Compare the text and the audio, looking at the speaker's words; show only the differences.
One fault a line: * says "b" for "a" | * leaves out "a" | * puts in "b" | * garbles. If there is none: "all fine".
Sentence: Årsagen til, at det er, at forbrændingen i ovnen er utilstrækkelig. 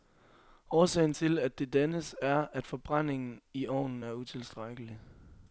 * puts in "dannes"